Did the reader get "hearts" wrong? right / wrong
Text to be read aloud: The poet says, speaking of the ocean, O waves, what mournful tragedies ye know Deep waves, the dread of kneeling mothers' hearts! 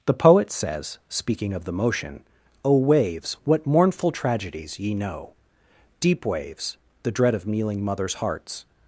right